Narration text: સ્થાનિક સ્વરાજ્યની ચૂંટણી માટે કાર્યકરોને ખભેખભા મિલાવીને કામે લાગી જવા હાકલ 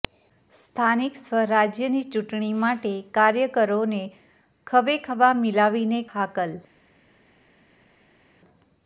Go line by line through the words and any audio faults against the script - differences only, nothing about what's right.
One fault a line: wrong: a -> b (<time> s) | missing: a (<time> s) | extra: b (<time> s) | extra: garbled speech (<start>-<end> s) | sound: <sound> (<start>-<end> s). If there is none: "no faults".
missing: કામે લાગી જવા (6.0 s)